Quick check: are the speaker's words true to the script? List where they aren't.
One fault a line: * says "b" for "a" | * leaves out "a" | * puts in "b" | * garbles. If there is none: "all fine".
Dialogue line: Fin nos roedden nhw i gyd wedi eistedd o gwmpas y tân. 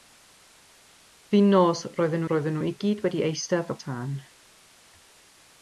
* puts in "roedden"
* leaves out "gwmpas"